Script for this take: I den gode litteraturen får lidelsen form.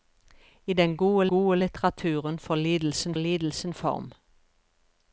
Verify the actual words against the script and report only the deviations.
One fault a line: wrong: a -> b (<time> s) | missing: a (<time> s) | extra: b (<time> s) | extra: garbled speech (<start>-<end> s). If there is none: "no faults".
extra: gode (1.3 s)
extra: lidelsen (3.2 s)